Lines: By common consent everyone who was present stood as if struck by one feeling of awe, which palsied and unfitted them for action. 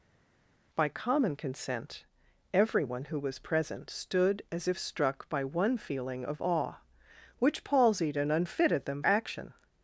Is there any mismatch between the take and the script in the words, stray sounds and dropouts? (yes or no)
yes